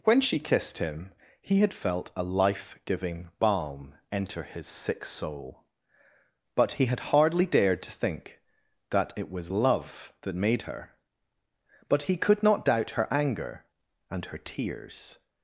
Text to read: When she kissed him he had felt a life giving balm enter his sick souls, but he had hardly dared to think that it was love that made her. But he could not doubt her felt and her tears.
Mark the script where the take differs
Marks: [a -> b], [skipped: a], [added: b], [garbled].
When she kissed him he had felt a life giving balm enter his sick [souls, -> soul] but he had hardly dared to think that it was love that made her. But he could not doubt her [felt -> anger] and her tears.